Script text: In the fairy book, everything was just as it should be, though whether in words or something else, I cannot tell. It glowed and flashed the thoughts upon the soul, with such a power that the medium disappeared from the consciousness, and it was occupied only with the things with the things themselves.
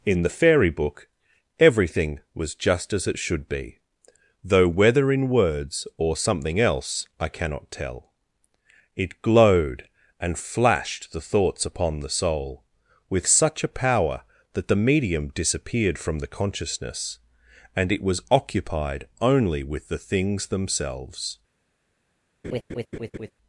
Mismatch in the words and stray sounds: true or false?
true